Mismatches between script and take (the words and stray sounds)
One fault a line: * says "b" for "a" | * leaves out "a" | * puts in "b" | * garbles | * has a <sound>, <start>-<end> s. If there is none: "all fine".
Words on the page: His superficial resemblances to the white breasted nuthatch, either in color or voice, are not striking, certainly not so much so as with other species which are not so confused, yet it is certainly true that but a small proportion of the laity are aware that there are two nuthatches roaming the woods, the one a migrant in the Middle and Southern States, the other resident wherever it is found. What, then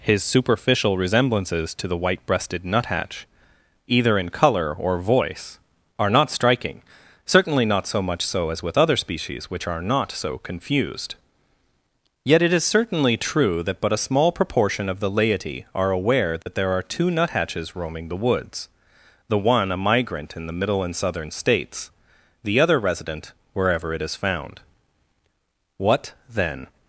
* has a dropout, 16.4-16.5 s